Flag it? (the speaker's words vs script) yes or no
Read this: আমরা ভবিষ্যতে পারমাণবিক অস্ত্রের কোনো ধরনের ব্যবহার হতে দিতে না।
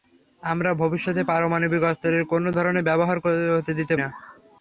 no